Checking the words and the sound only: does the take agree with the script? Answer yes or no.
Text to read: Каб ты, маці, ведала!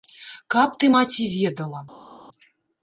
yes